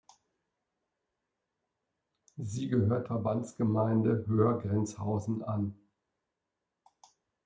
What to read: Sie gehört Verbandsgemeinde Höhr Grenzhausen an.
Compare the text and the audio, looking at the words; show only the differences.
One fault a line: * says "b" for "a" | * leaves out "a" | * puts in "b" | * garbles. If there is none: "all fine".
all fine